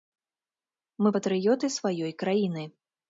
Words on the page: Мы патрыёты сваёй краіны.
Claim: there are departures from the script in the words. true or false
false